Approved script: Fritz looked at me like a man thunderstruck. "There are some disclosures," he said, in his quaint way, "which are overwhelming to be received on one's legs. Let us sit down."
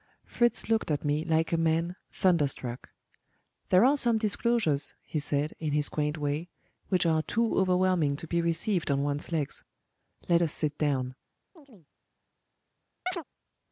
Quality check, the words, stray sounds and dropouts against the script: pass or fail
fail